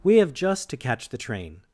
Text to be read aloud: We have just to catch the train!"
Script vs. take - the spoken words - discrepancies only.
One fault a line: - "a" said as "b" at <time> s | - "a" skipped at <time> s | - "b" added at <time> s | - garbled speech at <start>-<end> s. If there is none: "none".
none